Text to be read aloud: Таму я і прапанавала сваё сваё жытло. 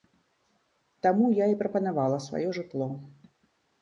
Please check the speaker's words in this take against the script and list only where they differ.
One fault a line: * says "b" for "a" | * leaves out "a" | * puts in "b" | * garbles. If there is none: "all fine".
* leaves out "сваё"